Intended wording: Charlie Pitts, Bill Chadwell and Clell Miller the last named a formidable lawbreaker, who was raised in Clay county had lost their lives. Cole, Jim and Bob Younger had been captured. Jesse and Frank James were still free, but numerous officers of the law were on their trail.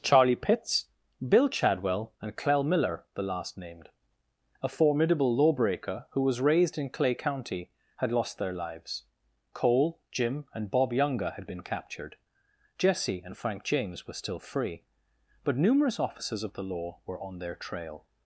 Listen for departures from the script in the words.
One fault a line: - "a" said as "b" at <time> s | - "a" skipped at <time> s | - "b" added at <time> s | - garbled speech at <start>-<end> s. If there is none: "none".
none